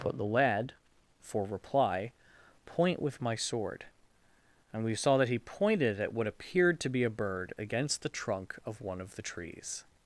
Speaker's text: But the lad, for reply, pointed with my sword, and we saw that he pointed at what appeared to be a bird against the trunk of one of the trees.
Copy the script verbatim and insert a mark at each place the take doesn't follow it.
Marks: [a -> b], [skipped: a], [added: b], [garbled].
But the lad, for reply, [pointed -> point] with my sword, and we saw that he pointed at what appeared to be a bird against the trunk of one of the trees.